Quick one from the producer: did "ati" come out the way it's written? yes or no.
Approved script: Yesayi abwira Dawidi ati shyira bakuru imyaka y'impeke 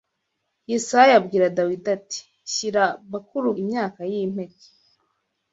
yes